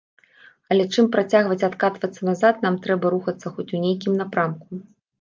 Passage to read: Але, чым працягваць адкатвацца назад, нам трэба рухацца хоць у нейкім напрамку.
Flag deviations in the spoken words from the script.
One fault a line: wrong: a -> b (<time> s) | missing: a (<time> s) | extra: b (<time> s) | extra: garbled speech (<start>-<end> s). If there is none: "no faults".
no faults